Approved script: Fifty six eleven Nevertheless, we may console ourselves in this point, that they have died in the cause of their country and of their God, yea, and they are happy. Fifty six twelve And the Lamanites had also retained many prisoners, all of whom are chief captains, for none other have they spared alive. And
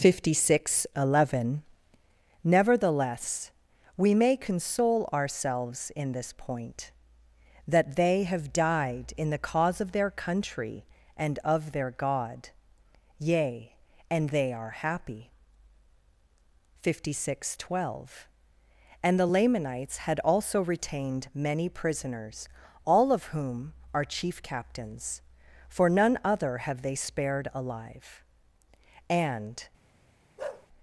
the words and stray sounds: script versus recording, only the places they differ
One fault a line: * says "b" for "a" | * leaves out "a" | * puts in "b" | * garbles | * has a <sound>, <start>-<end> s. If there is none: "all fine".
* has a bark, 30.4-30.7 s